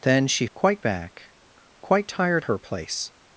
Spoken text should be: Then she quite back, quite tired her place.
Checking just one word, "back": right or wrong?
right